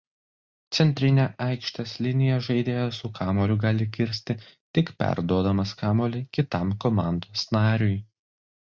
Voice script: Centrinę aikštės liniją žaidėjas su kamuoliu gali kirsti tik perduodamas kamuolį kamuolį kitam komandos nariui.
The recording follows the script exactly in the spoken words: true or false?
false